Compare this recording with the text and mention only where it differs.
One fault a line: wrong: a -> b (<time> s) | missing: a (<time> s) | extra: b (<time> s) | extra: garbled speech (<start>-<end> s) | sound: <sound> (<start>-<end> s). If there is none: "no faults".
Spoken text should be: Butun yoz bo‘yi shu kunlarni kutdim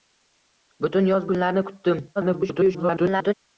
missing: bo‘yi shu (1.3 s)
extra: garbled speech (2.2-3.3 s)